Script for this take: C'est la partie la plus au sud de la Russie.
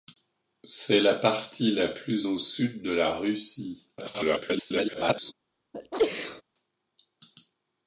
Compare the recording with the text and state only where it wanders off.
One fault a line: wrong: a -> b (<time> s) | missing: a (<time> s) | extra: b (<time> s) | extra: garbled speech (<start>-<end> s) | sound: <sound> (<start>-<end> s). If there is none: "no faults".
extra: garbled speech (4.0-5.3 s)
sound: sneeze (5.7-6.4 s)